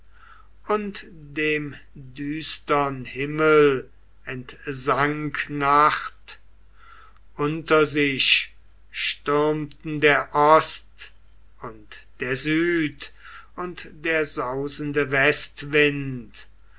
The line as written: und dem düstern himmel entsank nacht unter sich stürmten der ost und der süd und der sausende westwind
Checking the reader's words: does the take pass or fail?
pass